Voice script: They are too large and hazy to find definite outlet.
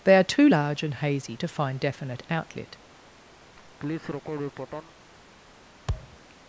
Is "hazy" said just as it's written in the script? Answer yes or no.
yes